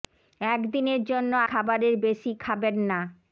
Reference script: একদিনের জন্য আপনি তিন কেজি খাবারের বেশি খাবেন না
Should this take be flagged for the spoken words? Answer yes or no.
yes